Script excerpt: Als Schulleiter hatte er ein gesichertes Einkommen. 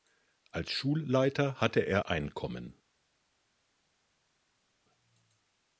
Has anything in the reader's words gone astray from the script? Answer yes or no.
yes